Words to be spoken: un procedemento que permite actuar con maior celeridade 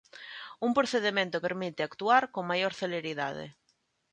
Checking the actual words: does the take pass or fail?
fail